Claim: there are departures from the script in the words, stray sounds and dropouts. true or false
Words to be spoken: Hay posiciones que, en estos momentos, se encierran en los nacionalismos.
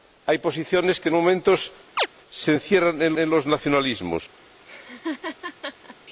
true